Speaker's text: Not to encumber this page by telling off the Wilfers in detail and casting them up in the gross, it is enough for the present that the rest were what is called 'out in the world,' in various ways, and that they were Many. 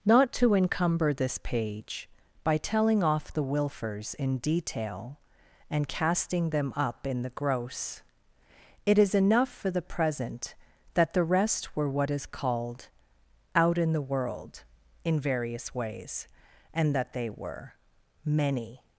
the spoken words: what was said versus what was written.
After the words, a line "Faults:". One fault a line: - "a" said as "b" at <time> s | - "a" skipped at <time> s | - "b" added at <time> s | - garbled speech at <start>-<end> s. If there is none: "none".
Not to encumber this page by telling off the Wilfers in detail and casting them up in the gross, it is enough for the present that the rest were what is called 'out in the world,' in various ways, and that they were Many.
Faults:
none